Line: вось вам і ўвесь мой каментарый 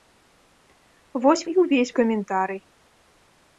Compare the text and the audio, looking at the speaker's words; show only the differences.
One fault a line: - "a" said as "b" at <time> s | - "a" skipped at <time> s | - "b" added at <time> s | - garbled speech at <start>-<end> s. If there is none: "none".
- "вам" skipped at 1.4 s
- "мой" skipped at 1.9 s